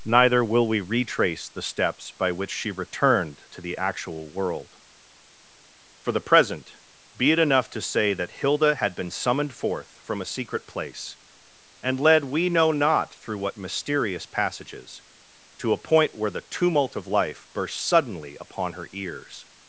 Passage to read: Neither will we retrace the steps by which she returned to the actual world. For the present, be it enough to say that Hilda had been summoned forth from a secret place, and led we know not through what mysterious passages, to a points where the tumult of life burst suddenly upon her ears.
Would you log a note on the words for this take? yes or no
yes